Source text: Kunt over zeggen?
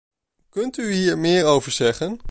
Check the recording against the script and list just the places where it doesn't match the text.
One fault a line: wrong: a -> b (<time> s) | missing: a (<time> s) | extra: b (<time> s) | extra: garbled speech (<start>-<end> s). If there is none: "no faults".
extra: u hier meer (0.8 s)